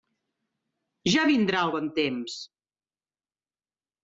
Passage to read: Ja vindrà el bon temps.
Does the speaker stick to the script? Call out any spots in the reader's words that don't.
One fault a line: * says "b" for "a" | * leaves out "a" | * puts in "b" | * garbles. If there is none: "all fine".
all fine